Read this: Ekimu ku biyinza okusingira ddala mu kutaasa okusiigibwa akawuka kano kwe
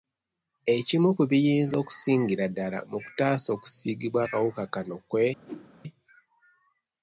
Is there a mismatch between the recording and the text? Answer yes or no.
no